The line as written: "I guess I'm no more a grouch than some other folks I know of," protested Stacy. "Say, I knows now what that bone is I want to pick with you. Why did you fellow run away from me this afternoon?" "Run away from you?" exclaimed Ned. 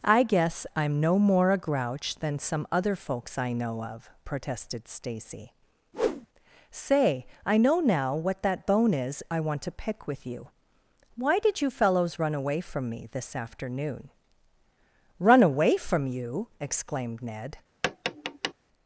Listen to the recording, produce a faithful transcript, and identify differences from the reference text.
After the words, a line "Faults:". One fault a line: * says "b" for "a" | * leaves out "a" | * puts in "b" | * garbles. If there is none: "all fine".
"I guess I'm no more a grouch than some other folks I know of," protested Stacy. "Say, I know now what that bone is I want to pick with you. Why did you fellows run away from me this afternoon?" "Run away from you?" exclaimed Ned.
Faults:
* says "know" for "knows"
* says "fellows" for "fellow"